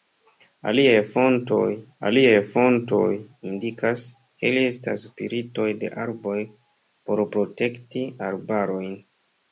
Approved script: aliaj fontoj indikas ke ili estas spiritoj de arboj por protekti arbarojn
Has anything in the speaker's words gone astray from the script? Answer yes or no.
yes